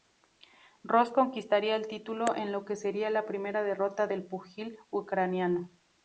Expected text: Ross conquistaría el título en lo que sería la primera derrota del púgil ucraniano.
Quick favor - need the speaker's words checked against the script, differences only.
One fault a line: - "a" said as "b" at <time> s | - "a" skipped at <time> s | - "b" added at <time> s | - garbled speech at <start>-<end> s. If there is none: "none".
none